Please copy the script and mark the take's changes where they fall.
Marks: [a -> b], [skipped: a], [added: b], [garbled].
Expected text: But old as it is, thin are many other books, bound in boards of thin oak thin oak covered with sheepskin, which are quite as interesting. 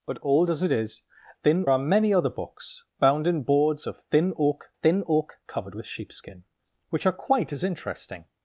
But old as it is, thin are many other books, bound in boards of thin oak thin oak covered with sheepskin, which are quite as interesting.